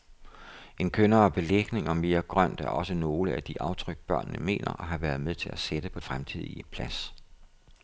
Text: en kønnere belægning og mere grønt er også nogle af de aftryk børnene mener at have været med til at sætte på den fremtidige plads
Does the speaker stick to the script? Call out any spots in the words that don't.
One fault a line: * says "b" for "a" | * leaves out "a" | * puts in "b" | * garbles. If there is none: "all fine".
* leaves out "den"